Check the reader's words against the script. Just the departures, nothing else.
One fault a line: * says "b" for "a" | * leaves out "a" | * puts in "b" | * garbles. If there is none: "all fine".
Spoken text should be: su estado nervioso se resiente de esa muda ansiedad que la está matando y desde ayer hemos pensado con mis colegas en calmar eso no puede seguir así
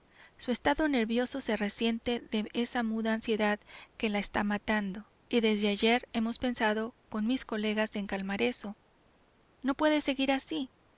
all fine